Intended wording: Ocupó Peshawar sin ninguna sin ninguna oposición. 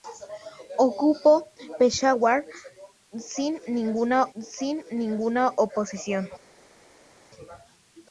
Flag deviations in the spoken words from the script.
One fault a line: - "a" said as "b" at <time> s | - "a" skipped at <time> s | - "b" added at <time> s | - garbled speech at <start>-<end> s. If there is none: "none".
none